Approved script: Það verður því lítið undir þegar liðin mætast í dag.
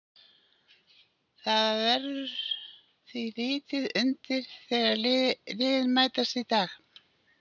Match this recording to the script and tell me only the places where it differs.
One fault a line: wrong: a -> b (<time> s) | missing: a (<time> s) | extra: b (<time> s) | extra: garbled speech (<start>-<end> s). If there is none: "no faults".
no faults